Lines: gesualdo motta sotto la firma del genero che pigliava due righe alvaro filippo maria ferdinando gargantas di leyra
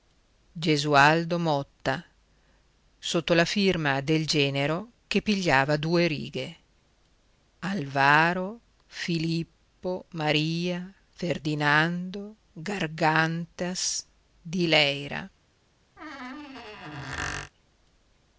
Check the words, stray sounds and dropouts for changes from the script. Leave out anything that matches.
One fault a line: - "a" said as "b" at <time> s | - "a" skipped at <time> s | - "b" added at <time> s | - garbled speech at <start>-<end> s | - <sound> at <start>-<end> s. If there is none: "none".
- squeak at 16.0-17.5 s